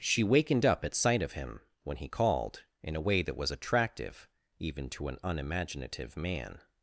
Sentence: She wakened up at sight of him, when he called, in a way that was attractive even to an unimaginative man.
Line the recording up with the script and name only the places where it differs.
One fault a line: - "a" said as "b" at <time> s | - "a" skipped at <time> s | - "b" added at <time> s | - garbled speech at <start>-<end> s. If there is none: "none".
none